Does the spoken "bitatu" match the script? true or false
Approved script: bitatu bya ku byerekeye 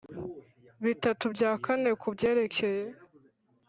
true